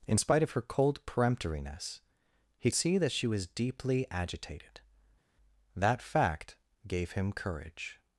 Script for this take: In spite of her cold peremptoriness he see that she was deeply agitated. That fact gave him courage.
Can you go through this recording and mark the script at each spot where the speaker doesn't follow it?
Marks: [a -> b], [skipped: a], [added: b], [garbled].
In spite of her cold peremptoriness he see that she was deeply agitated. That fact gave him courage.